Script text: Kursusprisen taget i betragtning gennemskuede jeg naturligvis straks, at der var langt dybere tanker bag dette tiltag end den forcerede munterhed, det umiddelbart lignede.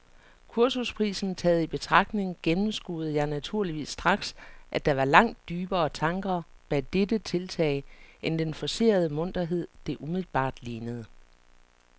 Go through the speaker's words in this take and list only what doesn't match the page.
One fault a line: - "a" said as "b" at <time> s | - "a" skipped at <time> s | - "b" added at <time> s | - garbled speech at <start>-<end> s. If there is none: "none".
none